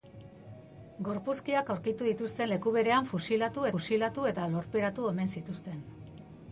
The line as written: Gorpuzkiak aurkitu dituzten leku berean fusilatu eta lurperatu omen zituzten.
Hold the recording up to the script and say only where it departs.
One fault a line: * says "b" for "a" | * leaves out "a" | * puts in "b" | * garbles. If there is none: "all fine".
* puts in "fusilatu"